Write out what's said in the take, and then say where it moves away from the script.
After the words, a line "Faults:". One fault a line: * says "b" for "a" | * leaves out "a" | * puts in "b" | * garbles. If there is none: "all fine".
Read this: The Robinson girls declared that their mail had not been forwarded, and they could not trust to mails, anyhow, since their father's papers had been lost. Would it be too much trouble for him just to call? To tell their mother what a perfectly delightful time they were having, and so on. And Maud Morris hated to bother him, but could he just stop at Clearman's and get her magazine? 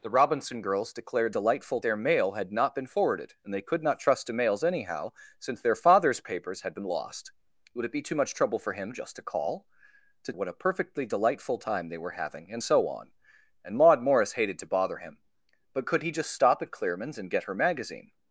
The Robinson girls declared delightful their mail had not been forwarded, and they could not trust to mails, anyhow, since their father's papers had been lost. Would it be too much trouble for him just to call? To what a perfectly delightful time they were having, and so on. And Maud Morris hated to bother him, but could he just stop at Clearman's and get her magazine?
Faults:
* says "delightful" for "that"
* leaves out "tell their mother"